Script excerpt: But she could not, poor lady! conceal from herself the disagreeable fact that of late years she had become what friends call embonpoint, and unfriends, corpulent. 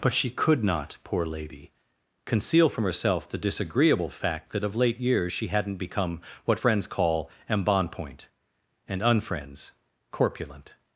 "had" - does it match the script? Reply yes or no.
no